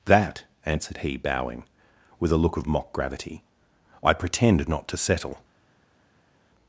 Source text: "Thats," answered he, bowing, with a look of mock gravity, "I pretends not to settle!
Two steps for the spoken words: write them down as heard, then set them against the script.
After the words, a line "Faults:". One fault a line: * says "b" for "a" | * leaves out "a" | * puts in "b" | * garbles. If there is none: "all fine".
"That," answered he, bowing, with a look of mock gravity, "I pretend not to settle!
Faults:
* says "That" for "Thats"
* says "pretend" for "pretends"